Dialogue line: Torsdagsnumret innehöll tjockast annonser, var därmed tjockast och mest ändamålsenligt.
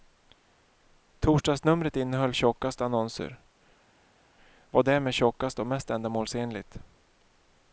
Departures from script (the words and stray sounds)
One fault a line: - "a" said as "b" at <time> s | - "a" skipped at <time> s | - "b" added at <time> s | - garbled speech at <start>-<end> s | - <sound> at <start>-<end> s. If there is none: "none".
none